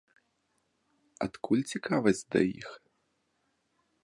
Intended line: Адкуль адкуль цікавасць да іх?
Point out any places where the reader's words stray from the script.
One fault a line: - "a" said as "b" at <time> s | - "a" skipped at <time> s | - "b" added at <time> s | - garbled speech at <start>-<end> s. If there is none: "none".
- "адкуль" skipped at 1.6 s